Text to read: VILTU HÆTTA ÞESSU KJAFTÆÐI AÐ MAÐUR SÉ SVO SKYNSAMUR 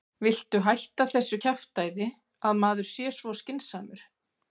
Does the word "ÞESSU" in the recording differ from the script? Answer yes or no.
no